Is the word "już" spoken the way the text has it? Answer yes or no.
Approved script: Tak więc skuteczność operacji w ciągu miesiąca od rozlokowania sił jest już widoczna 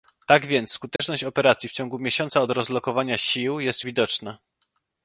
no